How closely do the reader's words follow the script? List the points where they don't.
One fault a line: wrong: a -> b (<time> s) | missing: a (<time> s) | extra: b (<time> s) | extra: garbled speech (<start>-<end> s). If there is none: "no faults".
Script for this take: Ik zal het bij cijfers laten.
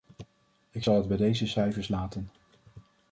extra: deze (1.2 s)